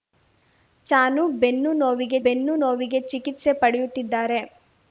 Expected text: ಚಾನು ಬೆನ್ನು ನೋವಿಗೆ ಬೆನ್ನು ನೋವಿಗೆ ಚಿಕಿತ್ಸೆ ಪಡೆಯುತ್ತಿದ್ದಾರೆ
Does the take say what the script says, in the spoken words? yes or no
yes